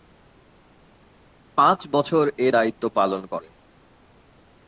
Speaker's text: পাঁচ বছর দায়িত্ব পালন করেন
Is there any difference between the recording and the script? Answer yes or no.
yes